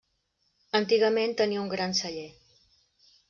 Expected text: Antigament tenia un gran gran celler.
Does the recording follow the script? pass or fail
fail